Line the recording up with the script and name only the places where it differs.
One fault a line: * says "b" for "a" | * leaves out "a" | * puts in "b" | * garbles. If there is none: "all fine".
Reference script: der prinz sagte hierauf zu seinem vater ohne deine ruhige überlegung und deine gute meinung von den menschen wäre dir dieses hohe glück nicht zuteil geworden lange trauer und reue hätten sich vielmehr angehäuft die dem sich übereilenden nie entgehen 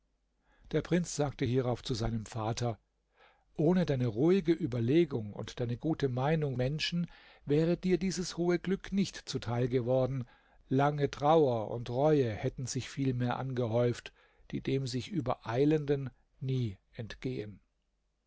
* leaves out "von den"